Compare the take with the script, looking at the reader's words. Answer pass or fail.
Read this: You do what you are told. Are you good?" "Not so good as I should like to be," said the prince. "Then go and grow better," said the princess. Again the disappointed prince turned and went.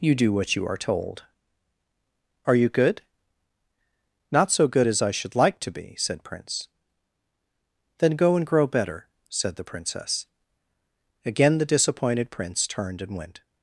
fail